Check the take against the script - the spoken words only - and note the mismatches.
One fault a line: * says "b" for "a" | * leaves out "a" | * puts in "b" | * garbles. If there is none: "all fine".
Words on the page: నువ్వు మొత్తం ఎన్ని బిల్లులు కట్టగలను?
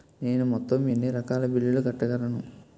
* says "నేను" for "నువ్వు"
* puts in "రకాల"